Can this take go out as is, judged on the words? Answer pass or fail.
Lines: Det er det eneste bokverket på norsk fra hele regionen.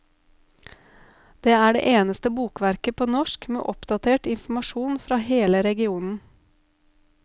fail